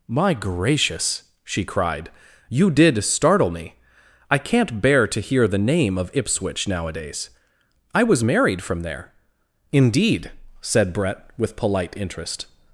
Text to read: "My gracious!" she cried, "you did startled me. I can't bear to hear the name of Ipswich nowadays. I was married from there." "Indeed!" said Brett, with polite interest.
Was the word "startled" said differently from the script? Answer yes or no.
yes